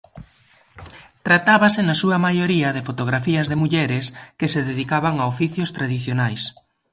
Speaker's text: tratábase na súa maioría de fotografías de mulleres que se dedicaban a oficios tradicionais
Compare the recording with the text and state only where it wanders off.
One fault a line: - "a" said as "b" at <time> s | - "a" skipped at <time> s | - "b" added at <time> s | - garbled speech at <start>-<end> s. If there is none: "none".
none